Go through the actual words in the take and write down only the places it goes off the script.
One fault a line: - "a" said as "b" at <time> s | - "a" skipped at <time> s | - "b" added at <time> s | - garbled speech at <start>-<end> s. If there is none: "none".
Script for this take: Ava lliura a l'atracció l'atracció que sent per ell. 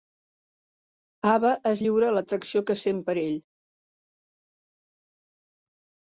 - "es" added at 1.7 s
- "l'atracció" skipped at 2.6 s